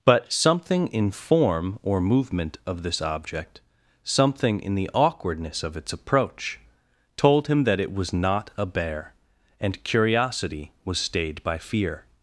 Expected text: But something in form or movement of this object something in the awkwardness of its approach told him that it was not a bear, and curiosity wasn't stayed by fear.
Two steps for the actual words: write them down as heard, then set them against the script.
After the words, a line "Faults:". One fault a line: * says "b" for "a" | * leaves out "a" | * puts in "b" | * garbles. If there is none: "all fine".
But something in form or movement of this object something in the awkwardness of its approach told him that it was not a bear, and curiosity was stayed by fear.
Faults:
* says "was" for "wasn't"